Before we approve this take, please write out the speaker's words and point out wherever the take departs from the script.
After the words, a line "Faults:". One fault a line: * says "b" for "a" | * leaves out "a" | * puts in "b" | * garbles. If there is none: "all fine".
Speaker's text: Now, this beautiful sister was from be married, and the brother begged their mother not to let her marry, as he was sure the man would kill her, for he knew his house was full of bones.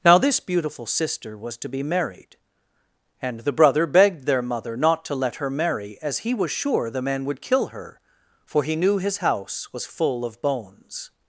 Now, this beautiful sister was to be married, and the brother begged their mother not to let her marry, as he was sure the man would kill her, for he knew his house was full of bones.
Faults:
* says "to" for "from"